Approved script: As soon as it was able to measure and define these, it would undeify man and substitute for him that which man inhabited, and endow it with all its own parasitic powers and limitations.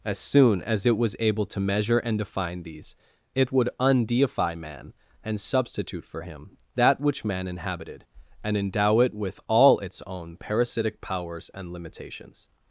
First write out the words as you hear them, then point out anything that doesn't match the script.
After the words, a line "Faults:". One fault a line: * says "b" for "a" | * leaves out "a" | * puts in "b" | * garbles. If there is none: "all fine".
As soon as it was able to measure and define these, it would undeify man and substitute for him that which man inhabited, and endow it with all its own parasitic powers and limitations.
Faults:
all fine